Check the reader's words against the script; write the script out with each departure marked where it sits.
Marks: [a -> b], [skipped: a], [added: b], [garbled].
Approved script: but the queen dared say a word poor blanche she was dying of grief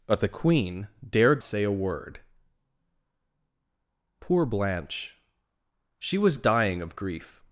but the queen dared say a word poor blanche she was dying of grief